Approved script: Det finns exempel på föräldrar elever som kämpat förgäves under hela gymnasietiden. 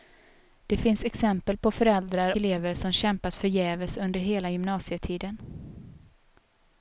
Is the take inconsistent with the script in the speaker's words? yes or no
no